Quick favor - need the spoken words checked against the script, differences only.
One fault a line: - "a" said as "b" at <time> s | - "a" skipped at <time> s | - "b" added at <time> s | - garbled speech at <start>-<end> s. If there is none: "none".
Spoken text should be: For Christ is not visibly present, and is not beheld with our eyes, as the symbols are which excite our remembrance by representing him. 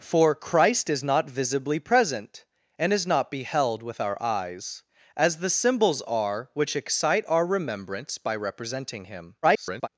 - garbled speech at 9.4-9.9 s